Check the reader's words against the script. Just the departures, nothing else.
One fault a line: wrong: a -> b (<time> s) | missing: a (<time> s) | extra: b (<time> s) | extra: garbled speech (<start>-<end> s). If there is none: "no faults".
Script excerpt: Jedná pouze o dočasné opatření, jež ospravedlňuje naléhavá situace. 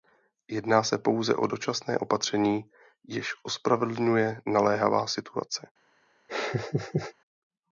extra: se (0.8 s)